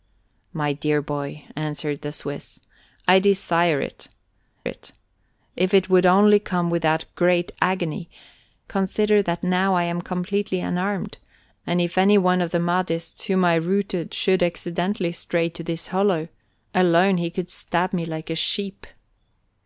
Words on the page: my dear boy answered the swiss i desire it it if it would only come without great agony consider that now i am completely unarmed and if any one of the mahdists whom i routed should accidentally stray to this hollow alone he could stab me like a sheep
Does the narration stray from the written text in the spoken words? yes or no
no